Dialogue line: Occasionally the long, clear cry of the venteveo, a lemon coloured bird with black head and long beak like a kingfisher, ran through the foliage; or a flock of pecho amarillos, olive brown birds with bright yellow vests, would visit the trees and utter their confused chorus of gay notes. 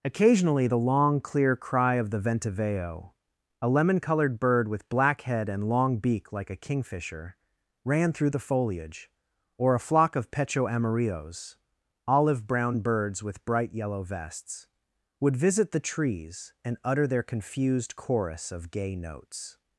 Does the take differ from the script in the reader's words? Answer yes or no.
no